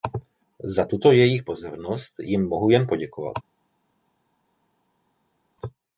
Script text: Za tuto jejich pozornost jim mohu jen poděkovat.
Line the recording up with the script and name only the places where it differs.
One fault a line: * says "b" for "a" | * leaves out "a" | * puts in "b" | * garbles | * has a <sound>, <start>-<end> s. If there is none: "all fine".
all fine